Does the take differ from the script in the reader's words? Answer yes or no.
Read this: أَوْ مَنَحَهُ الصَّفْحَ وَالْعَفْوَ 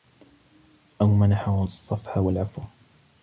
no